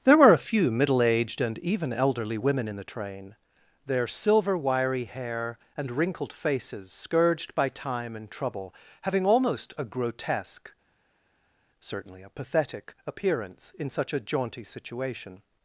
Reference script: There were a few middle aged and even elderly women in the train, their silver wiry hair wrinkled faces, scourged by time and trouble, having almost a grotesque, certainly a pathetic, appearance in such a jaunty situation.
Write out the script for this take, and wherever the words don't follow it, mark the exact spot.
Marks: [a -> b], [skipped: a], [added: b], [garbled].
There were a few middle aged and even elderly women in the train, their silver wiry hair [added: and] wrinkled faces, scourged by time and trouble, having almost a grotesque, certainly a pathetic, appearance in such a jaunty situation.